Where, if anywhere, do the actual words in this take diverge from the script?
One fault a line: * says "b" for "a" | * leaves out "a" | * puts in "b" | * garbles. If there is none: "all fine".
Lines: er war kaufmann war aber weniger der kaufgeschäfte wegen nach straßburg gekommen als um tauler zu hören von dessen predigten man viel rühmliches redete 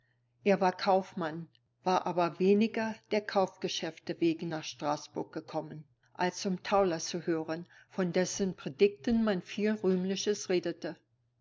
all fine